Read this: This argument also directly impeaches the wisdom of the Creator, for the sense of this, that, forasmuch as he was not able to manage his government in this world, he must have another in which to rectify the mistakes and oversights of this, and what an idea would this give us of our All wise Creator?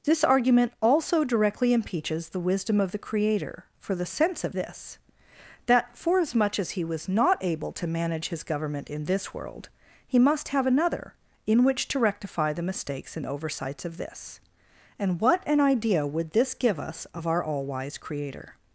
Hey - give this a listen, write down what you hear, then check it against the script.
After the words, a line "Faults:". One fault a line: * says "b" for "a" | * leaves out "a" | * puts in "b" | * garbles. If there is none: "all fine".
This argument also directly impeaches the wisdom of the Creator, for the sense of this, that, forasmuch as he was not able to manage his government in this world, he must have another in which to rectify the mistakes and oversights of this, and what an idea would this give us of our All wise Creator?
Faults:
all fine